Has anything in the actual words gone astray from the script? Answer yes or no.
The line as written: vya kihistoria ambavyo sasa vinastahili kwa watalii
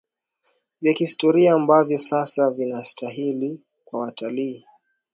no